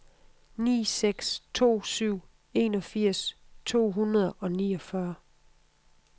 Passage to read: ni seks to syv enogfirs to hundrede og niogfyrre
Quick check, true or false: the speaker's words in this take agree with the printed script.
true